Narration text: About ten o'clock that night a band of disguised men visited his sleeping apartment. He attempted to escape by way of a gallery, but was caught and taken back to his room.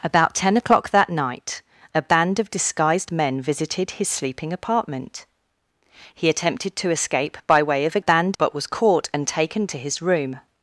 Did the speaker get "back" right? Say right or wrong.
wrong